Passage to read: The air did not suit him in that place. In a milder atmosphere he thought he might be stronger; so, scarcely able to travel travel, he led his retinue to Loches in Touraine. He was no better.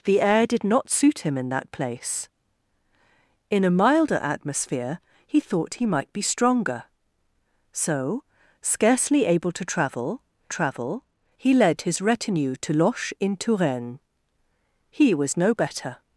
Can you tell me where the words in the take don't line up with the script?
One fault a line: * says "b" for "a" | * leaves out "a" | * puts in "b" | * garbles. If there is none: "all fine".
all fine